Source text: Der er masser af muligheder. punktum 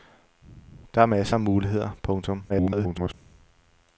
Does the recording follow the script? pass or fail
fail